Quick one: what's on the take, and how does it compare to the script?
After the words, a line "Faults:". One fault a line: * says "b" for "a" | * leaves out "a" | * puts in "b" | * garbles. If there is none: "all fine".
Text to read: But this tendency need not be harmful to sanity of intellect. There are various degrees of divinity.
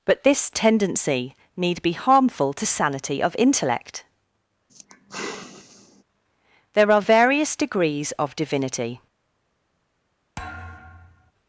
But this tendency need be harmful to sanity of intellect. There are various degrees of divinity.
Faults:
* leaves out "not"